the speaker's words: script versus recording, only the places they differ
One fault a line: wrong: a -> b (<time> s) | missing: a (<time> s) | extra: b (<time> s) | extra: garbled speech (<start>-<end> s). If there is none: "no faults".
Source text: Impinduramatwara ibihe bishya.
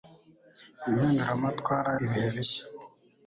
no faults